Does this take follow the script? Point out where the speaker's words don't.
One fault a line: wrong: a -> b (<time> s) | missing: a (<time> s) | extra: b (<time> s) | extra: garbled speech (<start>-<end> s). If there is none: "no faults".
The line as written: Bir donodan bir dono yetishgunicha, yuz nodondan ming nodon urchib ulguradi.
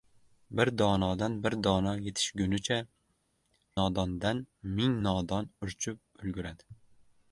missing: yuz (2.8 s)